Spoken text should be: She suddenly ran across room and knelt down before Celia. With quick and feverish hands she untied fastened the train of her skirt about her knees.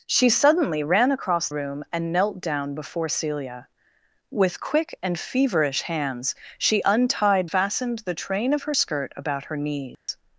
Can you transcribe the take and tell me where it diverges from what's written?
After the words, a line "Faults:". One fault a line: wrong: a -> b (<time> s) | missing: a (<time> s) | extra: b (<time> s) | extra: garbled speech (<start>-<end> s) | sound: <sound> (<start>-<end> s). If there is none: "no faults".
She suddenly ran across room and knelt down before Celia. With quick and feverish hands she untied fastened the train of her skirt about her knees.
Faults:
sound: dropout (9.9-10.1 s)